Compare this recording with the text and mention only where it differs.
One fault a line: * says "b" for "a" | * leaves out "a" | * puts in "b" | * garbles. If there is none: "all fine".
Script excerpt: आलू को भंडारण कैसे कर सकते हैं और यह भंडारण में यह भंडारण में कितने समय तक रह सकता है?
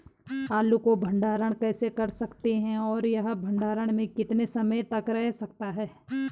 * leaves out "यह भंडारण में"